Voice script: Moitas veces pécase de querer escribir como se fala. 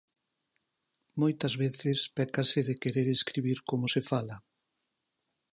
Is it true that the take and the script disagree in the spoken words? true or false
false